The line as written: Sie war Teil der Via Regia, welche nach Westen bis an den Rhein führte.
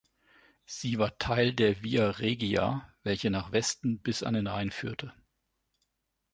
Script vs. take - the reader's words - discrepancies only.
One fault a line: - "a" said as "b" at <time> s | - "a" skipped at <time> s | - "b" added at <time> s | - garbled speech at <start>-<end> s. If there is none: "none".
none